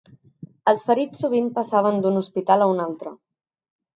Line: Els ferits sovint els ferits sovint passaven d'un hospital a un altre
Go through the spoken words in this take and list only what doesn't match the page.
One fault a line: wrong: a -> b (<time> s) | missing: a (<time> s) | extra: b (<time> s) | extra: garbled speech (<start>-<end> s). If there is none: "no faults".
missing: els ferits sovint (1.5 s)